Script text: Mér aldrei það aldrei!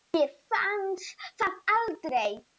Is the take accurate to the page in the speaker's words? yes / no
no